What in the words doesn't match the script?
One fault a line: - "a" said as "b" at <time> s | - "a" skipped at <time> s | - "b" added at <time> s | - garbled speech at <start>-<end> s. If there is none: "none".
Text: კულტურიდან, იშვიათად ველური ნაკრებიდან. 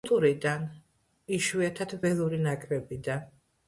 none